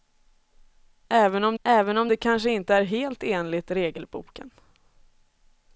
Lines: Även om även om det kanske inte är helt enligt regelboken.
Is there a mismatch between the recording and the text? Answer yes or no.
no